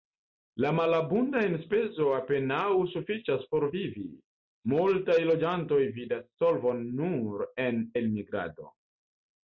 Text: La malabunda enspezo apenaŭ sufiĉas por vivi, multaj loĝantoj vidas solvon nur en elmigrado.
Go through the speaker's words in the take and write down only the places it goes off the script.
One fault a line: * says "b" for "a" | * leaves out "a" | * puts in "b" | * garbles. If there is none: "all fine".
all fine